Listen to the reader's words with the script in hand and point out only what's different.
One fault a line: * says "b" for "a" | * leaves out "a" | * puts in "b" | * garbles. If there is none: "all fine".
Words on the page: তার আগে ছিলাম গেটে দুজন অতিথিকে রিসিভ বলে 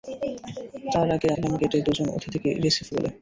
all fine